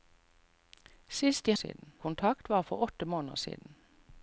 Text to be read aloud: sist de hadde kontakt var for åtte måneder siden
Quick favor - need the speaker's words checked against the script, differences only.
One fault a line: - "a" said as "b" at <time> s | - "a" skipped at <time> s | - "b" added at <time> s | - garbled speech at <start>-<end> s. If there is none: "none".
- "hadde" said as "siden" at 1.5 s